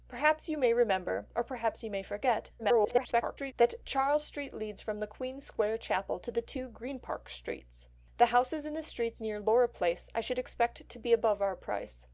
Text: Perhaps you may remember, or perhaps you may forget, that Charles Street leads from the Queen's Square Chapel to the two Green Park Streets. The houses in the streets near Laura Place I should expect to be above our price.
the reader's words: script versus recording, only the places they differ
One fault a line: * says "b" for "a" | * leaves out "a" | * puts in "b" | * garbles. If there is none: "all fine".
* garbles